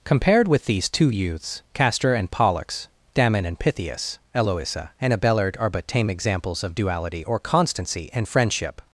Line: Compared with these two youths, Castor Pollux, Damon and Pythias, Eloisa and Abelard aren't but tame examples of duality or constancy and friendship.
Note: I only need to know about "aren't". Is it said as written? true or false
false